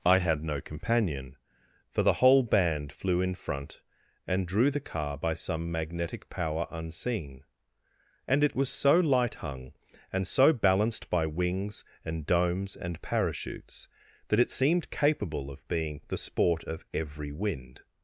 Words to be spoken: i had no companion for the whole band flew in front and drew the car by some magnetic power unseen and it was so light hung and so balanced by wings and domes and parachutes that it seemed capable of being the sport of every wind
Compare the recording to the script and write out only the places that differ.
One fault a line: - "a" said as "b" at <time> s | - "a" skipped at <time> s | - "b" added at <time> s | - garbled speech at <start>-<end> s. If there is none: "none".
none